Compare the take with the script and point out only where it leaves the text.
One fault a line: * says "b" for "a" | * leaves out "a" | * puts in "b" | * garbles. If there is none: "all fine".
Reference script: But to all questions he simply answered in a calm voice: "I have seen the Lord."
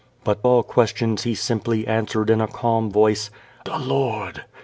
* leaves out "to"
* leaves out "I have seen"